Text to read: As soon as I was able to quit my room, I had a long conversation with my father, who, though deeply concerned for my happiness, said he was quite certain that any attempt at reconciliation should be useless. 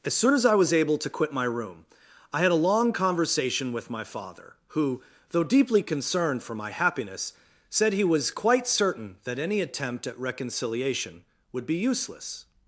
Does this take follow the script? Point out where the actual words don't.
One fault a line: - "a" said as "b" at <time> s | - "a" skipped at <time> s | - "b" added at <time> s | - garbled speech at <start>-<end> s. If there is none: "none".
- "should" said as "would" at 11.5 s